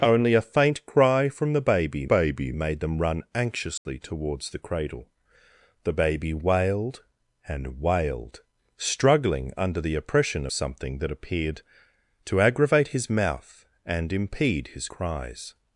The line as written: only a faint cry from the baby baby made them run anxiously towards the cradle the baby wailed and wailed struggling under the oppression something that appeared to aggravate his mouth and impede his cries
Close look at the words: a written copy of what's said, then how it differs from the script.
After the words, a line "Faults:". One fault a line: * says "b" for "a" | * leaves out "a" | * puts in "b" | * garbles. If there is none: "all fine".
only a faint cry from the baby baby made them run anxiously towards the cradle the baby wailed and wailed struggling under the oppression something that appeared to aggravate his mouth and impede his cries
Faults:
all fine